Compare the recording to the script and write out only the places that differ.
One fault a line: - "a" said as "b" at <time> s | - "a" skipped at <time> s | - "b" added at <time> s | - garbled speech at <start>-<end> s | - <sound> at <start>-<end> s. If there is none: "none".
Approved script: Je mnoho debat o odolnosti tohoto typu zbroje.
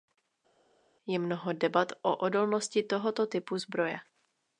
none